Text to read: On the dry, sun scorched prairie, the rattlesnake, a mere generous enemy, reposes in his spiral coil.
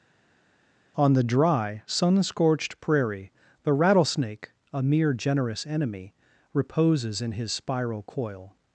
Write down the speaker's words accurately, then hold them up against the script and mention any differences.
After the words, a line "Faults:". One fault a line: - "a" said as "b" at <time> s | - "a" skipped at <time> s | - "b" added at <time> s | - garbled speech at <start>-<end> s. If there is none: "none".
On the dry, sun scorched prairie, the rattlesnake, a mere generous enemy, reposes in his spiral coil.
Faults:
none